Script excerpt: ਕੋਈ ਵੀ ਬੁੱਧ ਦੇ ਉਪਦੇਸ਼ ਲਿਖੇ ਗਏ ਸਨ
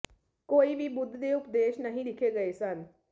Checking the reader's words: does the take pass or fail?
fail